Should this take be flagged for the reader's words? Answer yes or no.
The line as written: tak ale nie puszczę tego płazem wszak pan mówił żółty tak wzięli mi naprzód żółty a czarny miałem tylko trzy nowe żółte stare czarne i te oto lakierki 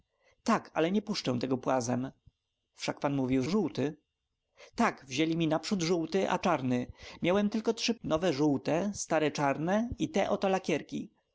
no